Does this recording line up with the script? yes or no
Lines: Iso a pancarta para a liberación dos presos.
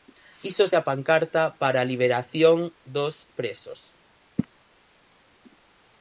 yes